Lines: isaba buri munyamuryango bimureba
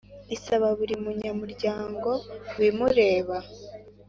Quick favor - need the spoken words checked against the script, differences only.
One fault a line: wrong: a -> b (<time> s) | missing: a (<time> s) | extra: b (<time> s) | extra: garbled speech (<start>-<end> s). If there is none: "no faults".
no faults